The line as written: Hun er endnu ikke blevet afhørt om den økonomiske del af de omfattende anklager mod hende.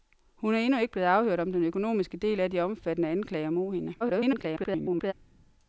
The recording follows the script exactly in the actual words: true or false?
false